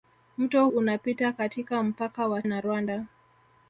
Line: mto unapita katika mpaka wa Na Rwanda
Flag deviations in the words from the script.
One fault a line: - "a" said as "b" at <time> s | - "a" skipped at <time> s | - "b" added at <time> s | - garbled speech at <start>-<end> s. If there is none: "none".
none